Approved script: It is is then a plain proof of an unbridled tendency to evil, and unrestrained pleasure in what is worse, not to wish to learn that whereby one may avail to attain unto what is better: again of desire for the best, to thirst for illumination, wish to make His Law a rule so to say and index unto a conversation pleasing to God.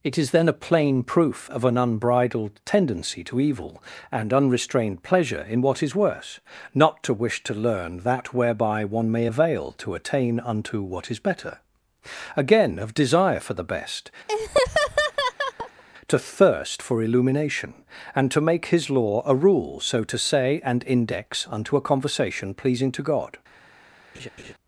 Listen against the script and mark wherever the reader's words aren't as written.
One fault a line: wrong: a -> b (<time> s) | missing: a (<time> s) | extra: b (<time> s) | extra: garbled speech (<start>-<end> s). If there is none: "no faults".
missing: is (0.3 s)
wrong: wish -> and (18.2 s)